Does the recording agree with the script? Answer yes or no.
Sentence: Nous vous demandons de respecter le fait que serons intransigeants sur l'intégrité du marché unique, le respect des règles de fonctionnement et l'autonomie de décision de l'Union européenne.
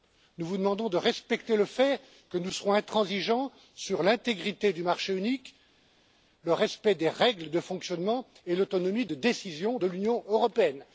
no